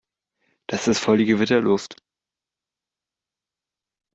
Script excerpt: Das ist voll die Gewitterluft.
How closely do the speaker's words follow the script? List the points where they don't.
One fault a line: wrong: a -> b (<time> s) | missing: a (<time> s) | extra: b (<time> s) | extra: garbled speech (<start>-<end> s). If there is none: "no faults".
no faults